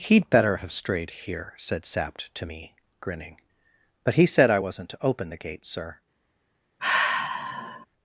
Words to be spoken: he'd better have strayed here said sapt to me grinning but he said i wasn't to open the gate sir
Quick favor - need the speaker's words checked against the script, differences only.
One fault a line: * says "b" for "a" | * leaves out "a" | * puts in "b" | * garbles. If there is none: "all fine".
all fine